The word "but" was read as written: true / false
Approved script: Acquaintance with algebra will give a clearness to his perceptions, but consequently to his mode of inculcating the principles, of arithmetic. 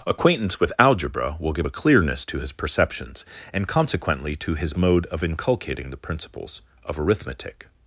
false